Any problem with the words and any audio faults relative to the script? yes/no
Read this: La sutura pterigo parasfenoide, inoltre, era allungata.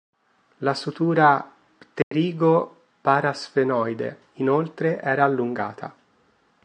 yes